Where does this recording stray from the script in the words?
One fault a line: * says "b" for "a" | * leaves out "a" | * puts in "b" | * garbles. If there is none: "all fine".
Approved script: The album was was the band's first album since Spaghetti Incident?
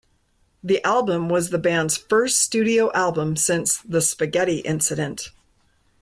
* leaves out "was"
* puts in "studio"
* puts in "The"